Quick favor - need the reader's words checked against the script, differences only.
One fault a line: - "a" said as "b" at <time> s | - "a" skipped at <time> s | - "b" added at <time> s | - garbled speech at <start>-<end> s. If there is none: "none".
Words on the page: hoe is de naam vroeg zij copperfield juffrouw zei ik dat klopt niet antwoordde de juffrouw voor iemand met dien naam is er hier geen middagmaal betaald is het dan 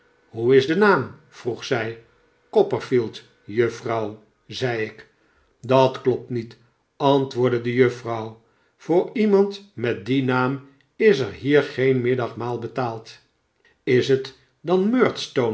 none